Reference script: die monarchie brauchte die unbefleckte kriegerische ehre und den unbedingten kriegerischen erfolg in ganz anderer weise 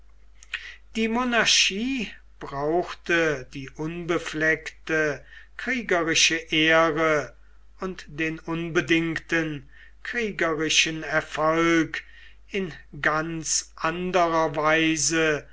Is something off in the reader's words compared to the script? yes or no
no